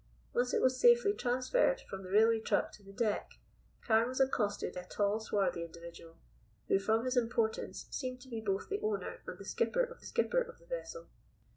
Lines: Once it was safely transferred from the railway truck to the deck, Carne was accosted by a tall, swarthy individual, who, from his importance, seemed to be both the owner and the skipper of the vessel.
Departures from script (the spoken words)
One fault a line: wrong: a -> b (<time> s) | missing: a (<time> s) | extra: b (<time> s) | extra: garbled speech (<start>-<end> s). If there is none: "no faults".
missing: by (4.8 s)
extra: skipper of (10.0 s)